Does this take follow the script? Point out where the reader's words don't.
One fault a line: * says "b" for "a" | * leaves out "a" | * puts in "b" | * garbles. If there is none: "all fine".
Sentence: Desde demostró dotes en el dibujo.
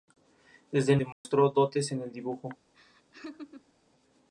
all fine